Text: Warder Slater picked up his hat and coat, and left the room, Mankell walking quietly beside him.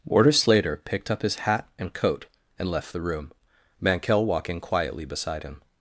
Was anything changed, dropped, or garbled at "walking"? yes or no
no